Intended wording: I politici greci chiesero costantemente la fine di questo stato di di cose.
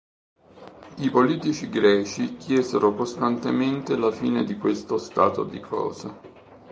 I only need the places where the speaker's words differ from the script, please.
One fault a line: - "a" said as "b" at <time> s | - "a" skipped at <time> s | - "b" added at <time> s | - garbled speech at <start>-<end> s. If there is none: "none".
- "di" skipped at 5.6 s